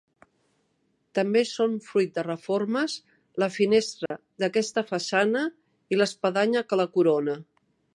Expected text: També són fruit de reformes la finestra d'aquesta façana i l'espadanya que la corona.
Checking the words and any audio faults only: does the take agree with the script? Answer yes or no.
no